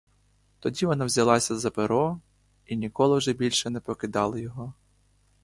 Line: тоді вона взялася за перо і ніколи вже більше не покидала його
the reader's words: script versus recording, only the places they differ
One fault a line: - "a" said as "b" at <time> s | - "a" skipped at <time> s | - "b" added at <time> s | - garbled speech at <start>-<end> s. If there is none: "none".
none